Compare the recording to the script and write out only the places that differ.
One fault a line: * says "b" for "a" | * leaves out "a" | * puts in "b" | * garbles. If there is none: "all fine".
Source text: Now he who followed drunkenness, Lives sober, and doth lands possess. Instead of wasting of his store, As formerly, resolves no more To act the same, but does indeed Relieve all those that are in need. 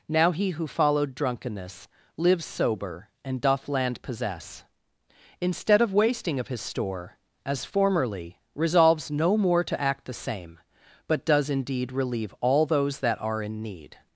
* says "land" for "lands"